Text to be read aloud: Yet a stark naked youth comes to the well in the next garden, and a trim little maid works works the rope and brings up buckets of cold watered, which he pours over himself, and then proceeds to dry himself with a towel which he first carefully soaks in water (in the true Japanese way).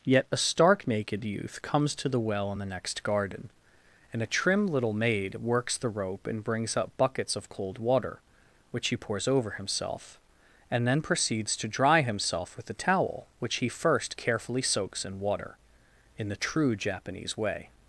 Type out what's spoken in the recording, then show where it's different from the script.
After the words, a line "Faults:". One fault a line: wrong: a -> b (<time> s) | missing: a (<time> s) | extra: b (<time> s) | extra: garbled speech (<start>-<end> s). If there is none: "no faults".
Yet a stark naked youth comes to the well in the next garden, and a trim little maid works the rope and brings up buckets of cold water, which he pours over himself, and then proceeds to dry himself with a towel which he first carefully soaks in water (in the true Japanese way).
Faults:
missing: works (5.8 s)
wrong: watered -> water (7.8 s)